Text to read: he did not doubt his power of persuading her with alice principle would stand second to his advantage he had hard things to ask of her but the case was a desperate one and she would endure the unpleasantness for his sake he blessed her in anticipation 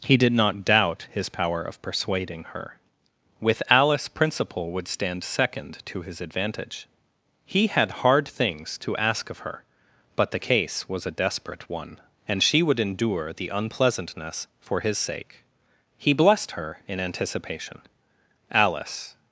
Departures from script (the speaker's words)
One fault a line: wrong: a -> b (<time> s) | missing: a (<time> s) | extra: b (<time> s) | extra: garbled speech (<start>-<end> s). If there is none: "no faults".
extra: alice (18.5 s)